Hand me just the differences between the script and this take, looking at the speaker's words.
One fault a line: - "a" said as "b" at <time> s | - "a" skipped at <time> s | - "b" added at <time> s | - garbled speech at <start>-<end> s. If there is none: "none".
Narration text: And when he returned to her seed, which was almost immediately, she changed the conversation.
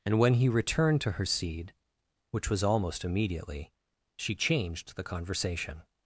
none